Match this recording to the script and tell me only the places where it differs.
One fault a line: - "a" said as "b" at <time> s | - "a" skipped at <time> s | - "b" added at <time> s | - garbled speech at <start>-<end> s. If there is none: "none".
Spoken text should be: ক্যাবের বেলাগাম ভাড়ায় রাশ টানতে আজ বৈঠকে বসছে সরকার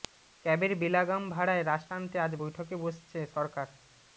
none